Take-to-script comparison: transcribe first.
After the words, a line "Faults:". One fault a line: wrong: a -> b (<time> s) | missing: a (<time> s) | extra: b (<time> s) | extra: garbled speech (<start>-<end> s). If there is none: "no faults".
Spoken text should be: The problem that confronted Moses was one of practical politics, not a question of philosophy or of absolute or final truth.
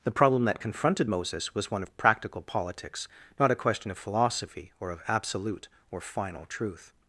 The problem that confronted Moses was one of practical politics, not a question of philosophy or of absolute or final truth.
Faults:
no faults